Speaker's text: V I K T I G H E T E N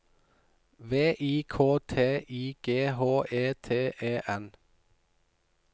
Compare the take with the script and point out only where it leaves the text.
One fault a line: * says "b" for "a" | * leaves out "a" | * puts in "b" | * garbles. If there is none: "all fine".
all fine